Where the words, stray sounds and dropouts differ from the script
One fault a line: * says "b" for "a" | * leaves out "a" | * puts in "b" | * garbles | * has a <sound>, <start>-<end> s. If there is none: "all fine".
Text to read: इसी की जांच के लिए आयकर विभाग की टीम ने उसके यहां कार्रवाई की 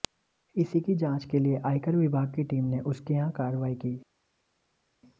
all fine